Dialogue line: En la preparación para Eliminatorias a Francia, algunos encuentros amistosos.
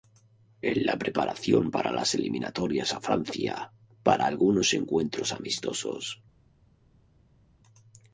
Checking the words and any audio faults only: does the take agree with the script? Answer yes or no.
no